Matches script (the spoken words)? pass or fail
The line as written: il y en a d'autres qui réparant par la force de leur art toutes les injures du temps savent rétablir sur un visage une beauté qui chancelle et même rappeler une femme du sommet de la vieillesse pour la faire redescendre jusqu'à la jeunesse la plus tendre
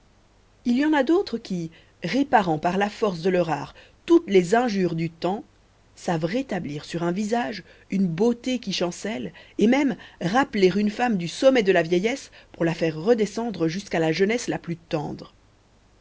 pass